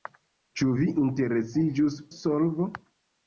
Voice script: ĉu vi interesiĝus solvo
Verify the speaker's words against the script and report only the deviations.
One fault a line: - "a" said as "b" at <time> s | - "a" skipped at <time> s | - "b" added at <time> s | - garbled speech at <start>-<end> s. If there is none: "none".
none